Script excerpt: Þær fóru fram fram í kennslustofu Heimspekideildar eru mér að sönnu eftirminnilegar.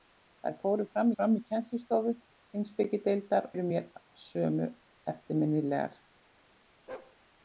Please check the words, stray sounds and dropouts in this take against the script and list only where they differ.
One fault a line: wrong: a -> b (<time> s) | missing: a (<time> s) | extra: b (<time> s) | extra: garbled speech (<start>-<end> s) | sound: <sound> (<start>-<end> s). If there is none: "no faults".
sound: bark (6.9-7.2 s)